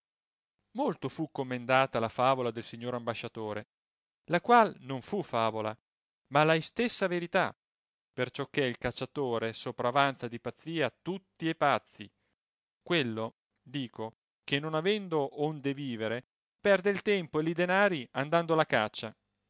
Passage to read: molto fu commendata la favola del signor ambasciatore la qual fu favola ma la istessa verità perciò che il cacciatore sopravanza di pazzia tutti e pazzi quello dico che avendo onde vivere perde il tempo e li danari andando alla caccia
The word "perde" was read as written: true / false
true